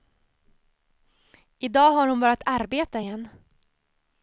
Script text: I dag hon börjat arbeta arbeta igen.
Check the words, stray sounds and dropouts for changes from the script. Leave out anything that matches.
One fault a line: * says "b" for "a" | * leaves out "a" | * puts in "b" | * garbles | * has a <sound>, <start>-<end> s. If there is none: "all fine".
* puts in "har"
* leaves out "arbeta"